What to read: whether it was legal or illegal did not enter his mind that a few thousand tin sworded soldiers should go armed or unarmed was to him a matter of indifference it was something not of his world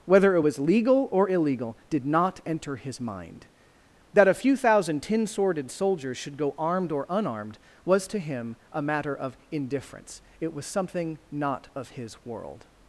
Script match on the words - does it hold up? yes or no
yes